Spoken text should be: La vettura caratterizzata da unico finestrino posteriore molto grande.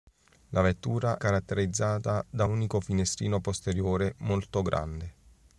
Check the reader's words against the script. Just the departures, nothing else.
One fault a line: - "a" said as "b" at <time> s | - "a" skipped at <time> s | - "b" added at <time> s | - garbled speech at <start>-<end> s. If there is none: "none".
none